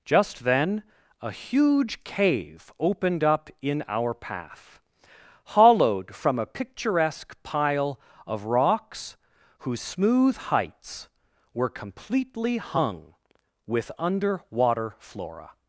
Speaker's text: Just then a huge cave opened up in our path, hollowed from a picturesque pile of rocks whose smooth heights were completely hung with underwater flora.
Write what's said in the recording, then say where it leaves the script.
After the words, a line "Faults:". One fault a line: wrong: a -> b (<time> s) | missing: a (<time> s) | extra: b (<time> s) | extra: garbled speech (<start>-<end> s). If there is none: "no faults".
Just then a huge cave opened up in our path, hollowed from a picturesque pile of rocks whose smooth heights were completely hung with underwater flora.
Faults:
no faults